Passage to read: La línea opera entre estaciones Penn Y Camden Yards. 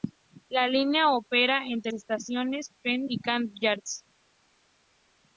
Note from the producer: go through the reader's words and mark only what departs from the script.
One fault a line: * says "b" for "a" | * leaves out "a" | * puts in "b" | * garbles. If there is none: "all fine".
all fine